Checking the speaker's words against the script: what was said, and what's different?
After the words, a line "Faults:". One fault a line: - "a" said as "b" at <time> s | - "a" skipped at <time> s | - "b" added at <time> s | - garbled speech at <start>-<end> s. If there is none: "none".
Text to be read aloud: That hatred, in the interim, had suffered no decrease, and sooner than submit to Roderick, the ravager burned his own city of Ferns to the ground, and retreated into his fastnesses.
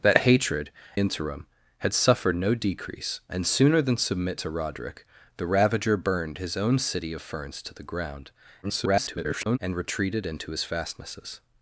That hatred, interim, had suffered no decrease, and sooner than submit to Roderick, the ravager burned his own city of Ferns to the ground, [garbled] and retreated into his fastnesses.
Faults:
- "in the" skipped at 0.7 s
- garbled speech at 8.6-9.6 s